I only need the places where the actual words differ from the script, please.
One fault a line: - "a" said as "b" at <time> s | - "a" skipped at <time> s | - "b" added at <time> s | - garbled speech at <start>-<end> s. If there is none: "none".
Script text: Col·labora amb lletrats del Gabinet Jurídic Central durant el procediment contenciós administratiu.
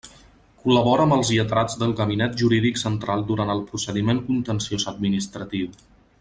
- "els" added at 1.2 s